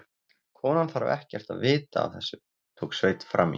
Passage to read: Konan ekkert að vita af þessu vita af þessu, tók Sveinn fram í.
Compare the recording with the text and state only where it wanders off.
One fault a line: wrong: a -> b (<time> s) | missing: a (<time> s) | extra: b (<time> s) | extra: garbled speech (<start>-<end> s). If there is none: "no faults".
extra: þarf (0.9 s)
missing: vita af þessu (2.4 s)